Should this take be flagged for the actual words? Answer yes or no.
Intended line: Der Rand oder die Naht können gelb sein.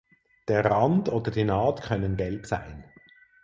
no